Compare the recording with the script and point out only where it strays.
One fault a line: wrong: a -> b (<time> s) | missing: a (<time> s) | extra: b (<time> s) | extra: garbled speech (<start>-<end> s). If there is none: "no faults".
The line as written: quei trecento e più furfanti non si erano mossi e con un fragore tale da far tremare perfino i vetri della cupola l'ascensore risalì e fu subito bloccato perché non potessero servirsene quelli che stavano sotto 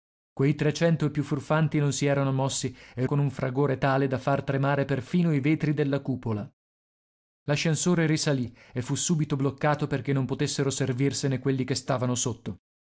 no faults